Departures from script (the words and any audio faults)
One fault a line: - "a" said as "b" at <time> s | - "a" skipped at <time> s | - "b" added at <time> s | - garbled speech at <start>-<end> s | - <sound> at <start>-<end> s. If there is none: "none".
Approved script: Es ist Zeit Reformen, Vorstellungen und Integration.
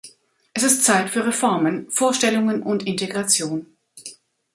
- "für" added at 1.1 s